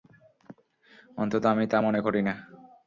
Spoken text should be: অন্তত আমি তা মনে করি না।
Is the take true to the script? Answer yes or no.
yes